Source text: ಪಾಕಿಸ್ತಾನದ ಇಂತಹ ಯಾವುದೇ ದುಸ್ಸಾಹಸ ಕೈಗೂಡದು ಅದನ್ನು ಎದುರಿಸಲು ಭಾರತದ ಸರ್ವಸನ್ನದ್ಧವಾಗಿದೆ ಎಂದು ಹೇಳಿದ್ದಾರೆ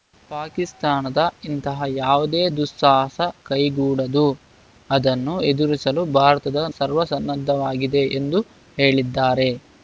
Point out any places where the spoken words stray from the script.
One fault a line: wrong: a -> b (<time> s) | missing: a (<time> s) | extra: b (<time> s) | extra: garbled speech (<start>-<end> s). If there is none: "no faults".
no faults